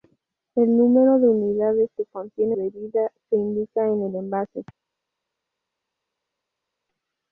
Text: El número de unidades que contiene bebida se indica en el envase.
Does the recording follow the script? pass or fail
pass